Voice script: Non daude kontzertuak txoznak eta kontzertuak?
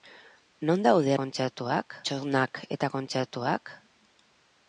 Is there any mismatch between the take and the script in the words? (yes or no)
no